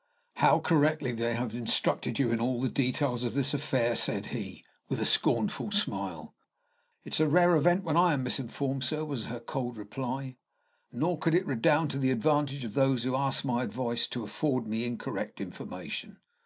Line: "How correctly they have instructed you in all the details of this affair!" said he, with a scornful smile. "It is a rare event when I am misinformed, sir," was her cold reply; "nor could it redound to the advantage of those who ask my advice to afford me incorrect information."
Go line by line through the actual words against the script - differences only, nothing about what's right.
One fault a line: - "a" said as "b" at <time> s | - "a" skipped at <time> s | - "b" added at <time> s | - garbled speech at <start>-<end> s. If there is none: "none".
none